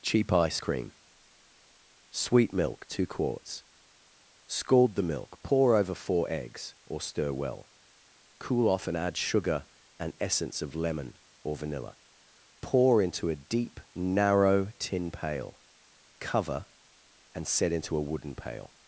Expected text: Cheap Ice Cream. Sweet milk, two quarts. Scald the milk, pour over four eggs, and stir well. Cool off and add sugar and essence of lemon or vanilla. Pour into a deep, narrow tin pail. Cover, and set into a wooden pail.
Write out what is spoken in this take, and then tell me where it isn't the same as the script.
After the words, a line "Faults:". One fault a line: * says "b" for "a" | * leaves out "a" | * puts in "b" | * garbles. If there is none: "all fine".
Cheap Ice Cream. Sweet milk, two quarts. Scald the milk, pour over four eggs, or stir well. Cool off and add sugar and essence of lemon or vanilla. Pour into a deep, narrow tin pail. Cover, and set into a wooden pail.
Faults:
* says "or" for "and"